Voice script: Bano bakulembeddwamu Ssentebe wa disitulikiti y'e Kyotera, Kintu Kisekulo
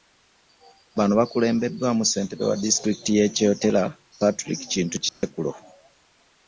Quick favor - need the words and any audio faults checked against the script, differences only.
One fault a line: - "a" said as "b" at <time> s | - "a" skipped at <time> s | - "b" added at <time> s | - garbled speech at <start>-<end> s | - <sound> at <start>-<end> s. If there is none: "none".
- "Patrick" added at 4.2 s
- dropout at 5.1-5.2 s